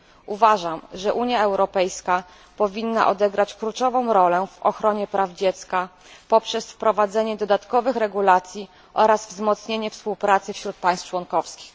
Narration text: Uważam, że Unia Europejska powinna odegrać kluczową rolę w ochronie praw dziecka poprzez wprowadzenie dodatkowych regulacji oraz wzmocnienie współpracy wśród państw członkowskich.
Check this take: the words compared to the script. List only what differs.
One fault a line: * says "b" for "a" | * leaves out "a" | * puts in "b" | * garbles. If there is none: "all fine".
all fine